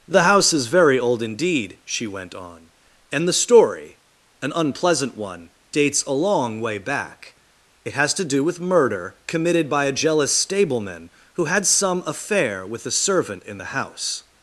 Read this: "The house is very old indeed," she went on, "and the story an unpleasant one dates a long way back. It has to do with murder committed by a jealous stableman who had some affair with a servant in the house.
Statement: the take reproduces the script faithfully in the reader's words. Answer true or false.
true